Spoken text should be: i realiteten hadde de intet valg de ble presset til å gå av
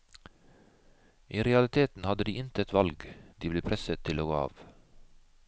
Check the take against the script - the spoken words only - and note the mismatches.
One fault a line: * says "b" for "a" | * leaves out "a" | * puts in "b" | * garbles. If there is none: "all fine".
all fine